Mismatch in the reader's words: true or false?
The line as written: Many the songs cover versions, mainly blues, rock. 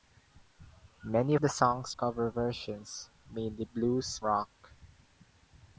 false